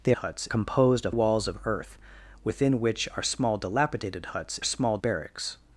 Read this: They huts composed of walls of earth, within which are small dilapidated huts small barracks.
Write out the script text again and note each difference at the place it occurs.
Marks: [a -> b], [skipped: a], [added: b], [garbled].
They huts composed of walls of earth, within which are small dilapidated huts small barracks.